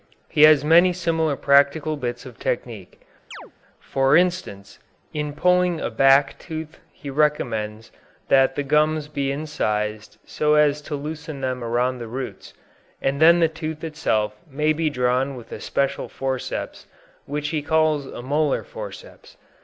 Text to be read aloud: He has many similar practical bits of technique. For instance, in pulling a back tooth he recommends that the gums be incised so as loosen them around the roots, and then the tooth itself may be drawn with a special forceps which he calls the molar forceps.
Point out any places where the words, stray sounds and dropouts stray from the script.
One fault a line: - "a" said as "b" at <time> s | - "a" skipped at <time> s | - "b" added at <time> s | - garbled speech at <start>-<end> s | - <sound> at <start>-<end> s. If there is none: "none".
- chirp at 3.3-3.5 s
- "to" added at 10.8 s
- "the" said as "a" at 18.1 s